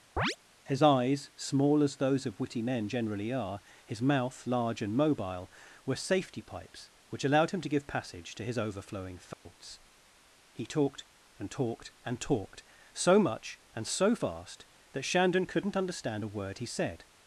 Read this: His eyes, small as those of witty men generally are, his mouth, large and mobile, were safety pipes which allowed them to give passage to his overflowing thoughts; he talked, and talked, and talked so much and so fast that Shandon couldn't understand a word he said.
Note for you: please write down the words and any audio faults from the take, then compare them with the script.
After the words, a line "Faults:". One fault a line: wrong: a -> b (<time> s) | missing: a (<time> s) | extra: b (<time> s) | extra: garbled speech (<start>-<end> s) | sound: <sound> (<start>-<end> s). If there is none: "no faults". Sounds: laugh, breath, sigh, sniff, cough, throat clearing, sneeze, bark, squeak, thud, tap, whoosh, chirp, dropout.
His eyes, small as those of witty men generally are, his mouth, large and mobile, were safety pipes which allowed him to give passage to his overflowing thoughts; he talked, and talked, and talked so much and so fast that Shandon couldn't understand a word he said.
Faults:
sound: chirp (0.2-0.4 s)
wrong: them -> him (7.5 s)
sound: dropout (9.3-9.5 s)